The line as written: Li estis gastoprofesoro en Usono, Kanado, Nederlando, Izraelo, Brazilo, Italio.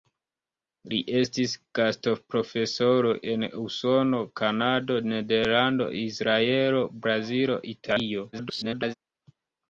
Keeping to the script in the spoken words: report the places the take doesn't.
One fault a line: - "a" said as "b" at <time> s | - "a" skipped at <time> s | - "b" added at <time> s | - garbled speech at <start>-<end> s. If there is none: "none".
- garbled speech at 8.3-8.9 s